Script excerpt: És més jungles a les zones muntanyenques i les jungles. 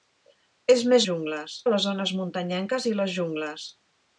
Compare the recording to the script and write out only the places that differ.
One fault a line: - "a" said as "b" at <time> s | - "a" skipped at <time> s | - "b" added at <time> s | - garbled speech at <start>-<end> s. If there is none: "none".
none